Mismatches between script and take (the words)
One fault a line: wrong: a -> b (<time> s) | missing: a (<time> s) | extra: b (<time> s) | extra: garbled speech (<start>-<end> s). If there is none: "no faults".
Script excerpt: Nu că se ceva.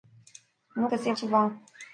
no faults